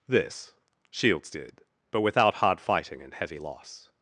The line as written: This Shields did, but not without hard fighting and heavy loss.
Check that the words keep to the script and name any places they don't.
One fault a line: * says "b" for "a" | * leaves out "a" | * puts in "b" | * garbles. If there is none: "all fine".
* leaves out "not"